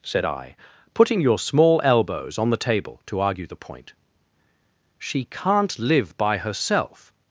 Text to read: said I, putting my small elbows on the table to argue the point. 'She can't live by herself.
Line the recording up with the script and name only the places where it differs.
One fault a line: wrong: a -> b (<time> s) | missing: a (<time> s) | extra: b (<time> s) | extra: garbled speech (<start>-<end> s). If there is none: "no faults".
wrong: my -> your (1.2 s)